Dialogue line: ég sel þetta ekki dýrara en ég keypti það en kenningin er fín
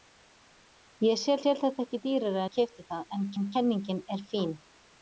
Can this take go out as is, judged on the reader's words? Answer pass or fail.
fail